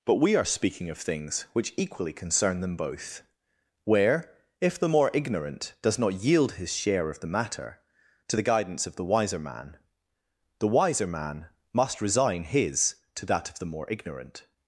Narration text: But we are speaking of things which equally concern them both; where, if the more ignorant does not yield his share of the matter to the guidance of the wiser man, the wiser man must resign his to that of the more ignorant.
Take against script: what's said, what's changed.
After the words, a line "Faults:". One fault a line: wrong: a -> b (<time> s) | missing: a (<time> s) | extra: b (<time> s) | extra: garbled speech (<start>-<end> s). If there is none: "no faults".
But we are speaking of things which equally concern them both; where, if the more ignorant does not yield his share of the matter to the guidance of the wiser man, the wiser man must resign his to that of the more ignorant.
Faults:
no faults